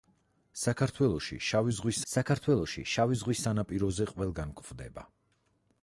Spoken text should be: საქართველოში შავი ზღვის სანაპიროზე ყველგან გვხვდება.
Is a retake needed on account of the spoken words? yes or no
yes